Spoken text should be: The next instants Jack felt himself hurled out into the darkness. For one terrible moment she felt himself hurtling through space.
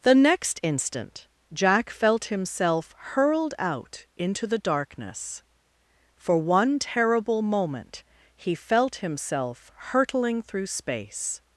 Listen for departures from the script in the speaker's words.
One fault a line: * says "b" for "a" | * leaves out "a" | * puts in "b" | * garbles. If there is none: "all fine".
* says "instant" for "instants"
* says "he" for "she"